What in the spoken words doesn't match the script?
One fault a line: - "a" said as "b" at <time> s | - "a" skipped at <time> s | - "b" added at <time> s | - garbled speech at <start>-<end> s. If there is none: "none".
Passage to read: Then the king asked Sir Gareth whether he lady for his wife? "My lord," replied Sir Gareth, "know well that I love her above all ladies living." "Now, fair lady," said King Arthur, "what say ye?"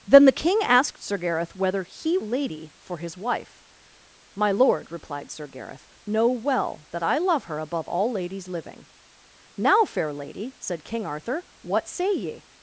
none